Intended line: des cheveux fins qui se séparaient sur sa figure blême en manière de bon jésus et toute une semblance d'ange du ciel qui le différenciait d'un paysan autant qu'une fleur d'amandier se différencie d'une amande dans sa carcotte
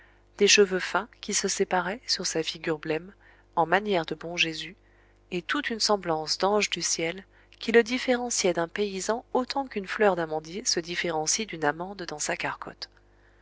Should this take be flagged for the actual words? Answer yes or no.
no